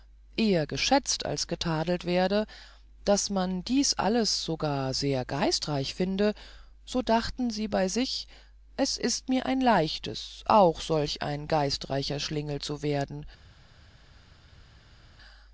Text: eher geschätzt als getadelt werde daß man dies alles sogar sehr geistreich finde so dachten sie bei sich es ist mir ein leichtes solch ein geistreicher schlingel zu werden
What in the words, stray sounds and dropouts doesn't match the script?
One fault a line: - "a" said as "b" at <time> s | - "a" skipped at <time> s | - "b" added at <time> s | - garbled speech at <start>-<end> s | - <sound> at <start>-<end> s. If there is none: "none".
- "auch" added at 10.5 s